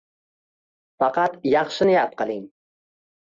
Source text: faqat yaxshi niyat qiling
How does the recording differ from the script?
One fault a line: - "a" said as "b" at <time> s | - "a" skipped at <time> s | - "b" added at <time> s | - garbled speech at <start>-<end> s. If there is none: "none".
none